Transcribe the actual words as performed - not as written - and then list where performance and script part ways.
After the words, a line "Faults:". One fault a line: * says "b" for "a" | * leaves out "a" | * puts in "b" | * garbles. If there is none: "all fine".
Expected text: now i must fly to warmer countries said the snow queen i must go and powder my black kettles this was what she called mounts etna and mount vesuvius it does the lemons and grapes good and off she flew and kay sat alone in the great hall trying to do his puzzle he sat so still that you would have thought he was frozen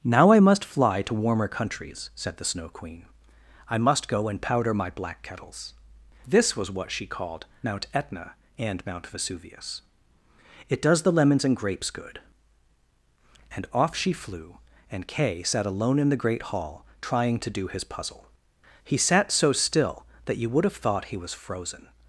now i must fly to warmer countries said the snow queen i must go and powder my black kettles this was what she called mount etna and mount vesuvius it does the lemons and grapes good and off she flew and kay sat alone in the great hall trying to do his puzzle he sat so still that you would have thought he was frozen
Faults:
* says "mount" for "mounts"